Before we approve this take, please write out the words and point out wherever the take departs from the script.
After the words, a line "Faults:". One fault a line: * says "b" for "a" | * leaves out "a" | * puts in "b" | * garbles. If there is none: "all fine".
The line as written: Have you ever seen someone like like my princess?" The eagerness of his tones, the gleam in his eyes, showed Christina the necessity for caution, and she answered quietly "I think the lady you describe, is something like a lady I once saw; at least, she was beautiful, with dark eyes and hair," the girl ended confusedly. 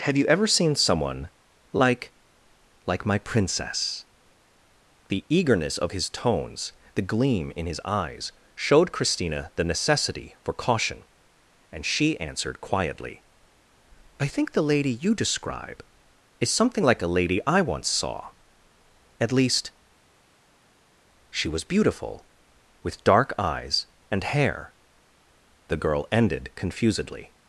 Have you ever seen someone like like my princess?" The eagerness of his tones, the gleam in his eyes, showed Christina the necessity for caution, and she answered quietly "I think the lady you describe, is something like a lady I once saw; at least, she was beautiful, with dark eyes and hair," the girl ended confusedly.
Faults:
all fine